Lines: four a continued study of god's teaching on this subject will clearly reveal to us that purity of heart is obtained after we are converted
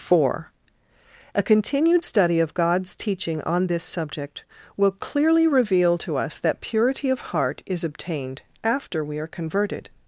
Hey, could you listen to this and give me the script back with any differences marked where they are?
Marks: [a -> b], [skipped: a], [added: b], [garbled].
four a continued study of god's teaching on this subject will clearly reveal to us that purity of heart is obtained after we are converted